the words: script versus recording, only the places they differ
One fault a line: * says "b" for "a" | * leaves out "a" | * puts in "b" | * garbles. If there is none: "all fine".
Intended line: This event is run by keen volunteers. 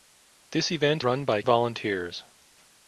* leaves out "is"
* leaves out "keen"